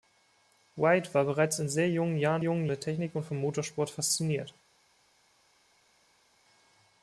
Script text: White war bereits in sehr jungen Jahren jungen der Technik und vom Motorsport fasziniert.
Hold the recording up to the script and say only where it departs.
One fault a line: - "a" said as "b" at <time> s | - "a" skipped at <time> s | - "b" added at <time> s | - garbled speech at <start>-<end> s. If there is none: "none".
none